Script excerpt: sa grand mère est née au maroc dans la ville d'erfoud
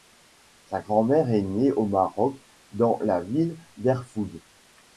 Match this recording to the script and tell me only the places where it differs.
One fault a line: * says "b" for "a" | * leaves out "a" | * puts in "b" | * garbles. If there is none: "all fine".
all fine